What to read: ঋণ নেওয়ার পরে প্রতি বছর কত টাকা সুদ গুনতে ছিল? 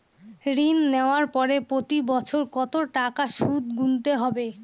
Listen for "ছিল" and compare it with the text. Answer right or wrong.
wrong